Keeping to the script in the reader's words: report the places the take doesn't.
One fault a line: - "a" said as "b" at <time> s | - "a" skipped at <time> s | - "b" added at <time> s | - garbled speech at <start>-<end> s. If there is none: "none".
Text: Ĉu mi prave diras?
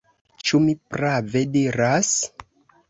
none